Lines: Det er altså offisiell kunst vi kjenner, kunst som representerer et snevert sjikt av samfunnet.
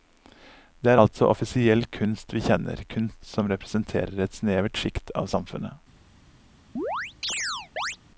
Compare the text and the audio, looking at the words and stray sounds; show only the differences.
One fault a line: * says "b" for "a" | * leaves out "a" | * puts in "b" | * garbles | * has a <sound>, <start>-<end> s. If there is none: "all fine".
* has a chirp, 6.8-8.0 s